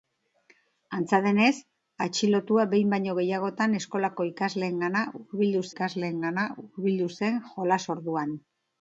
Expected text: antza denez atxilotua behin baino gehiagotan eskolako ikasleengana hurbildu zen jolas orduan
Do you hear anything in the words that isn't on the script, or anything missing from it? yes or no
yes